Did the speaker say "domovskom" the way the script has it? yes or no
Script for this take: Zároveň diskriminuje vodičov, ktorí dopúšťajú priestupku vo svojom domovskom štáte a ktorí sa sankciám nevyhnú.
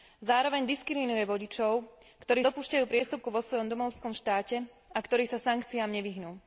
yes